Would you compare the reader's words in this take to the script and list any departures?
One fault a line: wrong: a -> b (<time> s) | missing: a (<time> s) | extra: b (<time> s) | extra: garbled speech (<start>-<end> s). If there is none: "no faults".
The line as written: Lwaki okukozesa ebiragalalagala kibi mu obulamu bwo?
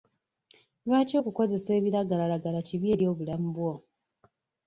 wrong: mu -> eri (2.9 s)